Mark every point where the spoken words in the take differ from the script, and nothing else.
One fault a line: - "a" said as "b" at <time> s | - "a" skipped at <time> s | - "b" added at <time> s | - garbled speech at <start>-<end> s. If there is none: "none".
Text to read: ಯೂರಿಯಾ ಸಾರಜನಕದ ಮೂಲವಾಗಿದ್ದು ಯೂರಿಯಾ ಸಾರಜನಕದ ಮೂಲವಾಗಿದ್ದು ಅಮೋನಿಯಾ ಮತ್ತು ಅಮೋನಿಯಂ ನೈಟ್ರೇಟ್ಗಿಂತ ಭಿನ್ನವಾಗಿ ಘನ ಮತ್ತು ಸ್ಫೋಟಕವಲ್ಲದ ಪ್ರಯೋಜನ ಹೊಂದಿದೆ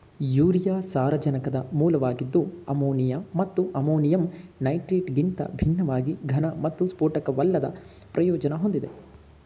- "ಯೂರಿಯಾ ಸಾರಜನಕದ ಮೂಲವಾಗಿದ್ದು" skipped at 2.4 s